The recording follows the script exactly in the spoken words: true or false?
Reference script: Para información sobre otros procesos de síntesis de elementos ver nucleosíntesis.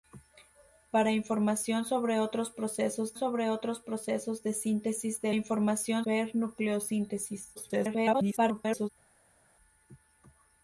false